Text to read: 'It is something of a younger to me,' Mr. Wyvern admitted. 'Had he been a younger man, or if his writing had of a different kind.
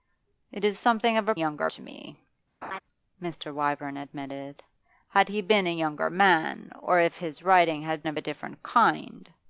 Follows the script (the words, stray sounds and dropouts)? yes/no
no